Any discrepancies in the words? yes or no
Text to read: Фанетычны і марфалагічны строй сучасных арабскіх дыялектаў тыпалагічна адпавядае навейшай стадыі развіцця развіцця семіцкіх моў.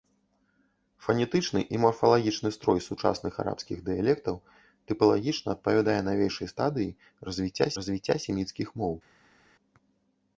no